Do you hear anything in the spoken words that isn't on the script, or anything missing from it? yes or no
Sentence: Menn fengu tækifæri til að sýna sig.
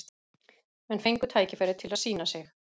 no